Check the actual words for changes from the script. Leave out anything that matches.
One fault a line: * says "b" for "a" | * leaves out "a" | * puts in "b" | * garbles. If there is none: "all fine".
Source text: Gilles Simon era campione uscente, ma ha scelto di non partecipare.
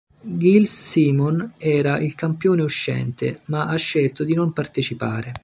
* puts in "il"